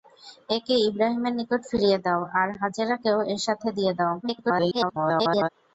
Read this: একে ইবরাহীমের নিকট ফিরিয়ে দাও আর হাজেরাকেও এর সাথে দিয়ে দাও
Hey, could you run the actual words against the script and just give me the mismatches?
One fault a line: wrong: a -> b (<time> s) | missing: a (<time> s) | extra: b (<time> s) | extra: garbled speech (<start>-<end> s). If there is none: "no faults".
extra: garbled speech (4.2-5.5 s)